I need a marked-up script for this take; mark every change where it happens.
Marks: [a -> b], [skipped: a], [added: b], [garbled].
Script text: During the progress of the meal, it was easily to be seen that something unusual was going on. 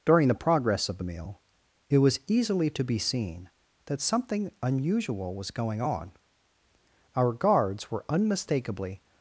During the progress of the meal, it was easily to be seen that something unusual was going on. [added: Our guards were unmistakably]